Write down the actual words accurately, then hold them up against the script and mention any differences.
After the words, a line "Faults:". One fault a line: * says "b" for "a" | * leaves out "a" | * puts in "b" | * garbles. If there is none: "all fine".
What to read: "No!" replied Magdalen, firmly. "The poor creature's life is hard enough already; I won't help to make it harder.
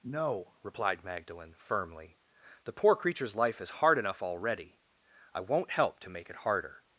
"No!" replied Magdalen, firmly. "The poor creature's life is hard enough already; I won't help to make it harder.
Faults:
all fine